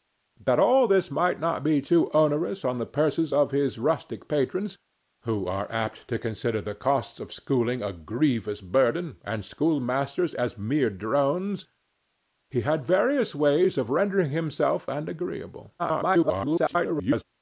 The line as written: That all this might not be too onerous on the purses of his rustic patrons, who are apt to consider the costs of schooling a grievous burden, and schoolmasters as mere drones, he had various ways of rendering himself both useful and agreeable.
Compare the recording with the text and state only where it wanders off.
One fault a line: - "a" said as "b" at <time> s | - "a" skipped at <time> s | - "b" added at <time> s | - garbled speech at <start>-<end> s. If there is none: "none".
- "both useful" skipped at 14.9 s
- garbled speech at 15.8-17.2 s